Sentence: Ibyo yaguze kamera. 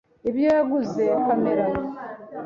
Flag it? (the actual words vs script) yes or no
no